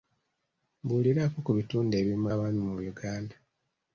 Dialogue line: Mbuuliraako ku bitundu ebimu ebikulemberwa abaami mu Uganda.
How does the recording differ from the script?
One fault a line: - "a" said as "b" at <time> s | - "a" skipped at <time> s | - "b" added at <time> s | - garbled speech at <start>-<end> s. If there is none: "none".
- "ebikulemberwa" skipped at 2.2 s